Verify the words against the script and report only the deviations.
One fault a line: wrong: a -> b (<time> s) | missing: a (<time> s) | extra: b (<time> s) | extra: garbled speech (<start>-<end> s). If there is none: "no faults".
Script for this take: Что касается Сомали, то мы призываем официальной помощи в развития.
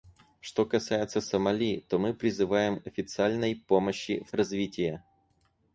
no faults